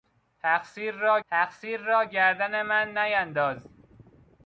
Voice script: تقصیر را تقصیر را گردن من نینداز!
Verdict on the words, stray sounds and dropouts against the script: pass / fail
pass